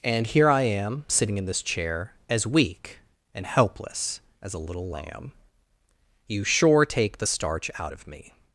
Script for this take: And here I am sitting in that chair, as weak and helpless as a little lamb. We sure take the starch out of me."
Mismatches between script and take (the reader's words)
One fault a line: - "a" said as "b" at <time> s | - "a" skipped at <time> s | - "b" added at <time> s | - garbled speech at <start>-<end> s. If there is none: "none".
- "that" said as "this" at 1.4 s
- "We" said as "You" at 6.3 s